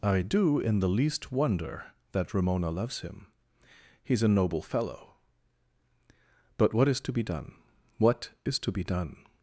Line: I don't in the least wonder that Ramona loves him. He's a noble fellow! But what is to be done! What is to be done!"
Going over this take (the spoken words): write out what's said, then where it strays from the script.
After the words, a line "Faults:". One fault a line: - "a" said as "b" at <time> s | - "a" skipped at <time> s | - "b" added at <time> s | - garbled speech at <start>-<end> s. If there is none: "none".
I do in the least wonder that Ramona loves him. He's a noble fellow! But what is to be done! What is to be done!"
Faults:
- "don't" said as "do" at 0.2 s